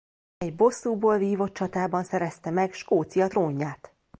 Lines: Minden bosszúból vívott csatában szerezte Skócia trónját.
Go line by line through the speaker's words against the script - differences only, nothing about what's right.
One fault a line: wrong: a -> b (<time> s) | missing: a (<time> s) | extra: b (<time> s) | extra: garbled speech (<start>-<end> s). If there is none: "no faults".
wrong: Minden -> Egy (0.4 s)
extra: meg (2.5 s)